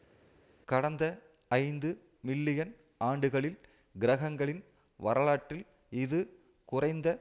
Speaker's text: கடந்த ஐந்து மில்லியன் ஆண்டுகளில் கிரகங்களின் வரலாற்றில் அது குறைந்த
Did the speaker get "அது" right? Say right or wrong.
wrong